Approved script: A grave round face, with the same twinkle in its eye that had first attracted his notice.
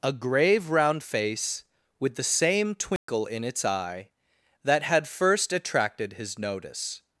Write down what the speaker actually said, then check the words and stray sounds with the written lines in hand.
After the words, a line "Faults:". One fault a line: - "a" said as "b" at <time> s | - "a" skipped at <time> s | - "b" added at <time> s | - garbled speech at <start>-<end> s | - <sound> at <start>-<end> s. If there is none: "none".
A grave round face, with the same twinkle in its eye that had first attracted his notice.
Faults:
- dropout at 3.0-3.1 s